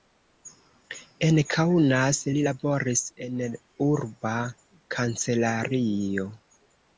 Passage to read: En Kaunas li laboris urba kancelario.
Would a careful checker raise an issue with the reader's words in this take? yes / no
yes